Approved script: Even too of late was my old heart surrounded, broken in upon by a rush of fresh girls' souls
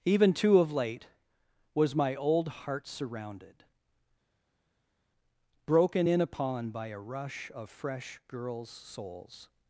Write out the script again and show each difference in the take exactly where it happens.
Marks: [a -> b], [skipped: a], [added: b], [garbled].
Even too of late was my old heart surrounded, broken in upon by a rush of fresh girls' souls